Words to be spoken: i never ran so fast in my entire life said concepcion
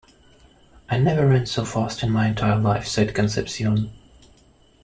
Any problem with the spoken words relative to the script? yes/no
no